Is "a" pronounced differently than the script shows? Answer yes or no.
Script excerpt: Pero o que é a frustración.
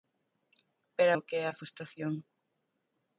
no